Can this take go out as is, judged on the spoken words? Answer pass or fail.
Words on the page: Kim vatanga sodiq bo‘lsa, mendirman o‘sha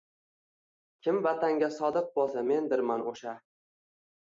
pass